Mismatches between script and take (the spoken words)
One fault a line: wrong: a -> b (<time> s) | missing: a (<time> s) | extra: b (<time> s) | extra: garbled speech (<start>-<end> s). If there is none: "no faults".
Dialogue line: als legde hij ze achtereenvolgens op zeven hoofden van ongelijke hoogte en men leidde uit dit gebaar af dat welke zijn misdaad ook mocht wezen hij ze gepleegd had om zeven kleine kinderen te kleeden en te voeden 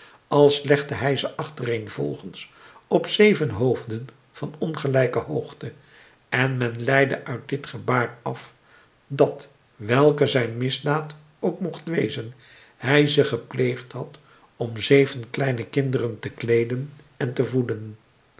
no faults